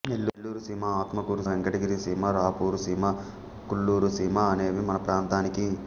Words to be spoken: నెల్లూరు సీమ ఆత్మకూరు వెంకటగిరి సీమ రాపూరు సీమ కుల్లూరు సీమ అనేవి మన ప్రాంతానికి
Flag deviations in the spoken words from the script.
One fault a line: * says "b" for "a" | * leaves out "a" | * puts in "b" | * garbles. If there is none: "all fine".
all fine